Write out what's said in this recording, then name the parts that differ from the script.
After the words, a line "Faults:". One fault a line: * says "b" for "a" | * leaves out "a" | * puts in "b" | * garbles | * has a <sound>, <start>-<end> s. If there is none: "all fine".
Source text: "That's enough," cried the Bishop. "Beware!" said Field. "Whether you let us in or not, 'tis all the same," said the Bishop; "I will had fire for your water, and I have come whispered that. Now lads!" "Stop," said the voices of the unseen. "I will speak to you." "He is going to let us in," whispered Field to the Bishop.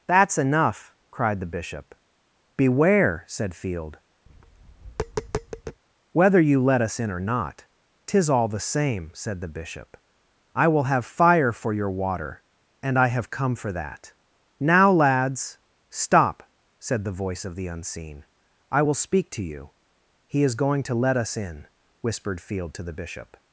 "That's enough," cried the Bishop. "Beware!" said Field. "Whether you let us in or not, 'tis all the same," said the Bishop; "I will have fire for your water, and I have come for that. Now lads!" "Stop," said the voice of the unseen. "I will speak to you." "He is going to let us in," whispered Field to the Bishop.
Faults:
* has a tap, 4.3-5.8 s
* says "have" for "had"
* says "for" for "whispered"
* says "voice" for "voices"